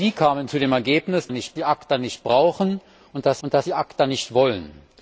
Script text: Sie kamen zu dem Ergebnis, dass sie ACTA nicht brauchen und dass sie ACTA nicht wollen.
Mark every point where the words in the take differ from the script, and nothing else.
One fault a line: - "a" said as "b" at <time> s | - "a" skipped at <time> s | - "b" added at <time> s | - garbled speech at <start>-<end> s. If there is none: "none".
- "dass" said as "nicht" at 1.3 s
- "und dass" added at 3.4 s